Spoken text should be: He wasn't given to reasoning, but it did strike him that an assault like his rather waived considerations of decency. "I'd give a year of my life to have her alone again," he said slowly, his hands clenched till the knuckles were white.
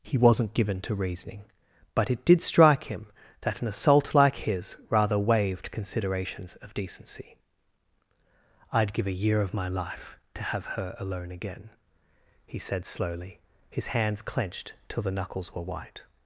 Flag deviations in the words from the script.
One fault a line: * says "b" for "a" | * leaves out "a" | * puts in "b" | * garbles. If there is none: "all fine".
all fine